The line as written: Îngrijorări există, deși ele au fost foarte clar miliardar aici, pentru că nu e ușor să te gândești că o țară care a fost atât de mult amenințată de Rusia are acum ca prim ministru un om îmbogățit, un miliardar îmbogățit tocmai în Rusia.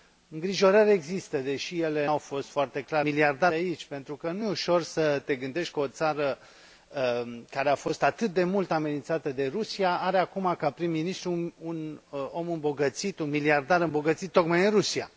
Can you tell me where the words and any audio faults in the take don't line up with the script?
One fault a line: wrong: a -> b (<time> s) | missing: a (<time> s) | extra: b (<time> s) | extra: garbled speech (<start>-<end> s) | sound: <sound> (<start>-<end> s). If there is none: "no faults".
no faults